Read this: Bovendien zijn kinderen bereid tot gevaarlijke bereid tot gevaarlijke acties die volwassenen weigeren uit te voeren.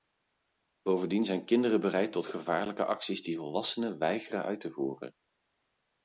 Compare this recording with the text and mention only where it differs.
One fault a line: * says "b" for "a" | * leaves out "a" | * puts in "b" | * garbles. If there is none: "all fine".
* leaves out "bereid tot gevaarlijke"